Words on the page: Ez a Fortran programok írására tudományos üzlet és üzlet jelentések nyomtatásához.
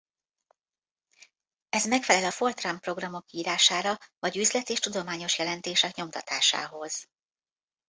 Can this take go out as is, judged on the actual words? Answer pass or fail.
fail